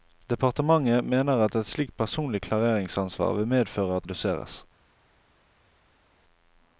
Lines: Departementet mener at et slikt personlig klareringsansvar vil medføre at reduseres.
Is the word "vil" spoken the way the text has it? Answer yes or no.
yes